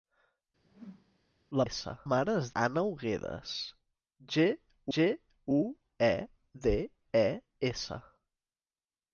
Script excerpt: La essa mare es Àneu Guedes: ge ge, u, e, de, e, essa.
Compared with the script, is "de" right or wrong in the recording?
right